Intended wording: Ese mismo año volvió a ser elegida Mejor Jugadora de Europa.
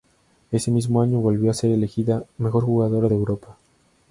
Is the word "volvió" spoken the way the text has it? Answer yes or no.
yes